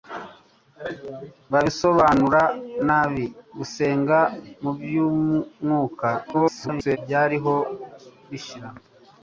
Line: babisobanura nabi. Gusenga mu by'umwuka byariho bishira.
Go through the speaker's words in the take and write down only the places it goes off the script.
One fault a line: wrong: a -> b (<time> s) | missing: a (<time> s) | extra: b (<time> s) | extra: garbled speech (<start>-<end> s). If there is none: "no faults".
extra: garbled speech (6.3-7.0 s)